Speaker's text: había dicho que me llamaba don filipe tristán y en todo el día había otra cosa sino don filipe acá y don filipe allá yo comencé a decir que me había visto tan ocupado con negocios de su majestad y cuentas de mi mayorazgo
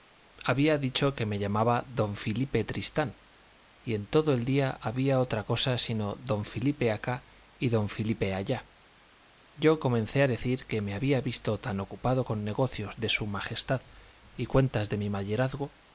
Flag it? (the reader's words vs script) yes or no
no